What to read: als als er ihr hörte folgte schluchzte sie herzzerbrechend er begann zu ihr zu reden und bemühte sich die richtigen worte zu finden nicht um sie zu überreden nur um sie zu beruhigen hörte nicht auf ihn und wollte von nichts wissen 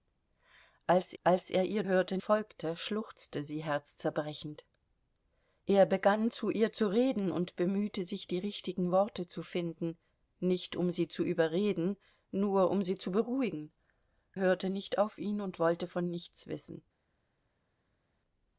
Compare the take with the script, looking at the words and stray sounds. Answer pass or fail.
pass